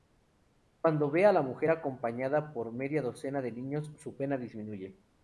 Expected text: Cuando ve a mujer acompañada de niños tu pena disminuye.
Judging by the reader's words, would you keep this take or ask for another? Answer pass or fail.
fail